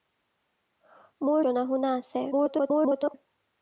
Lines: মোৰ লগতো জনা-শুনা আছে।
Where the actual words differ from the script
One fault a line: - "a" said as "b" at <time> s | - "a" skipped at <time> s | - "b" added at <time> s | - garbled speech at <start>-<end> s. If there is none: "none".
- "লগতো" skipped at 1.4 s
- garbled speech at 2.3-3.1 s